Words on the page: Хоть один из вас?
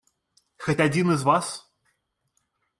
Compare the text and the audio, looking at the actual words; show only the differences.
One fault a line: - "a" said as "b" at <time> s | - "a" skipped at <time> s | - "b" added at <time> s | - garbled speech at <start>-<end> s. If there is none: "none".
none